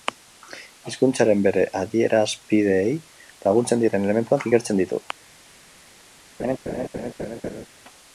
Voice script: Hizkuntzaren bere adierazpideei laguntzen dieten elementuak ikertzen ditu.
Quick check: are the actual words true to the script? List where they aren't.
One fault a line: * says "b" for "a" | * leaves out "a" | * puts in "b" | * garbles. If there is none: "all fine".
all fine